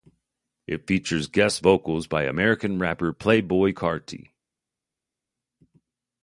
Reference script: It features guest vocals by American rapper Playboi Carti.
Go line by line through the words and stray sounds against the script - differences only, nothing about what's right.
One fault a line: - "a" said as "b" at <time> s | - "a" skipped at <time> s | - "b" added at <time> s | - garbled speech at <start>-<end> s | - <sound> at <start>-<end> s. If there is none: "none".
none